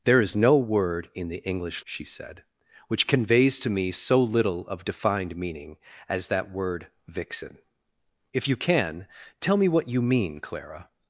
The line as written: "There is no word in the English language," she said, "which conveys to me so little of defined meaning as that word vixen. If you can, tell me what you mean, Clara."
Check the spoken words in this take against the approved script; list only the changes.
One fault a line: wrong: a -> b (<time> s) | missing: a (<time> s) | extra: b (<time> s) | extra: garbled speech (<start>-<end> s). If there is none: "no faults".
missing: language (1.9 s)